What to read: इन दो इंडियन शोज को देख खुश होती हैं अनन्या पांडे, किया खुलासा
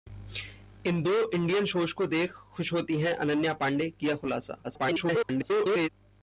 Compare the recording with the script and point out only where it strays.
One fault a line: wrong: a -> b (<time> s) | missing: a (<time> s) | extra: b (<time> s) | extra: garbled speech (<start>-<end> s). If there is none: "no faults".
extra: garbled speech (4.6-5.9 s)